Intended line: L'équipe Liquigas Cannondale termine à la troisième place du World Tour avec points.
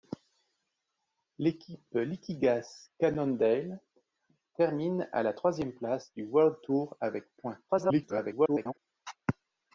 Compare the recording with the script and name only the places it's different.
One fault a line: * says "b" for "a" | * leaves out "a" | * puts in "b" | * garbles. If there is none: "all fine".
* garbles